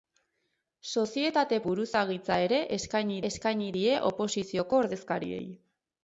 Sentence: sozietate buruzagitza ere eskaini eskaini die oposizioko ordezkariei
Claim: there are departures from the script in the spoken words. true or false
false